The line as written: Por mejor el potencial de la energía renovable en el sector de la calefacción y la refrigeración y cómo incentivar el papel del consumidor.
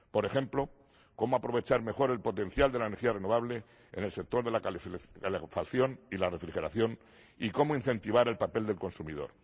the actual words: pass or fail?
fail